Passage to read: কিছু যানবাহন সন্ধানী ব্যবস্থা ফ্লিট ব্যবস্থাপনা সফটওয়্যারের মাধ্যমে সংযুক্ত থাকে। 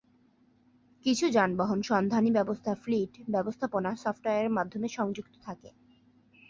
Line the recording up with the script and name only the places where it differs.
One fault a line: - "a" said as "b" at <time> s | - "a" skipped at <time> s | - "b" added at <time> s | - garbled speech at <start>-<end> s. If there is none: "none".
none